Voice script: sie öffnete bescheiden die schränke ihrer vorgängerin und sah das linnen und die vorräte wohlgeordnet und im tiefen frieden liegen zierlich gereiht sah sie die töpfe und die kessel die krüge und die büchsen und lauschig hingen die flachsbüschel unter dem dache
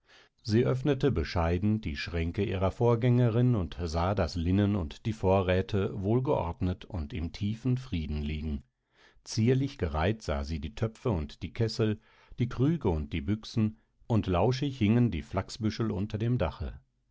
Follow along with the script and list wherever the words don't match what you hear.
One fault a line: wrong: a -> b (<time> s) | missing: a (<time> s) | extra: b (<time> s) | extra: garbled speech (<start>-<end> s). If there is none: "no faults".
no faults